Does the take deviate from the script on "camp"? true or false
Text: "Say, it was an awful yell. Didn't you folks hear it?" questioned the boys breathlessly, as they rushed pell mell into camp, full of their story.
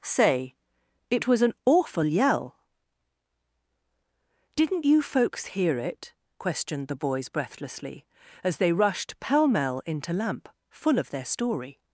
true